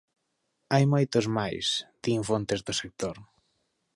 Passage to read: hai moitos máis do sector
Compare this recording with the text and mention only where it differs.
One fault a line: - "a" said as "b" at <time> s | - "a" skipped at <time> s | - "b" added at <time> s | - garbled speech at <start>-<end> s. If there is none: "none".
- "din fontes" added at 2.0 s